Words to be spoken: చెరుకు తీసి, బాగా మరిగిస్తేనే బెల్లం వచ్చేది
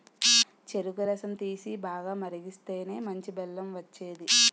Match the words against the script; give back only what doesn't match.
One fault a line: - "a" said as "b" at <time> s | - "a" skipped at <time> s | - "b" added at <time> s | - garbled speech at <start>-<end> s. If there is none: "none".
- "రసం" added at 1.0 s
- "మంచి" added at 3.0 s